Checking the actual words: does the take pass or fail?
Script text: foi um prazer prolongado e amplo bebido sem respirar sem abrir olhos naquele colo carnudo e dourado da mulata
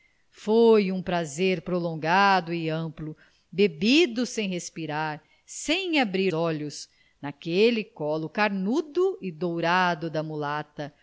pass